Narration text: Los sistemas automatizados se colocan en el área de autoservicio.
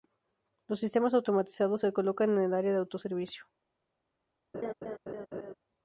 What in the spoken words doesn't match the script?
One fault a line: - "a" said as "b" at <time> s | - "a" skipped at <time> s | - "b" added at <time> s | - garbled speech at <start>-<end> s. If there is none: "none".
none